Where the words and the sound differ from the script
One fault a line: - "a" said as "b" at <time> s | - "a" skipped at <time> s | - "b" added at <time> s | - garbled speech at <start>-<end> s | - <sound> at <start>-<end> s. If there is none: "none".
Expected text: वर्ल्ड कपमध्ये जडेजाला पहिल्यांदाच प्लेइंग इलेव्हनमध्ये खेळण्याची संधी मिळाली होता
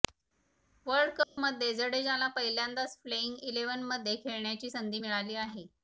- dropout at 1.2-1.4 s
- "होता" said as "आहे" at 5.4 s